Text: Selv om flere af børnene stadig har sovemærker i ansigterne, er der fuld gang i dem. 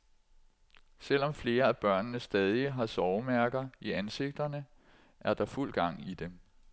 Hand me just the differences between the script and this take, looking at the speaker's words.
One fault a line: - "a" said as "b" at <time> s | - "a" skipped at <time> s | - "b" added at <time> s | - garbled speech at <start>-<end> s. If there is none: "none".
none